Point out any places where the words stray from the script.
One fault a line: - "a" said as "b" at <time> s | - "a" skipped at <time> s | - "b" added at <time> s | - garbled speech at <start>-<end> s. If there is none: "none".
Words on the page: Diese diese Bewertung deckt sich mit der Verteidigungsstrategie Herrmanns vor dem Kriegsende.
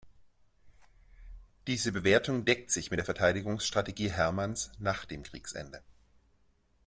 - "diese" skipped at 1.9 s
- "vor" said as "nach" at 4.8 s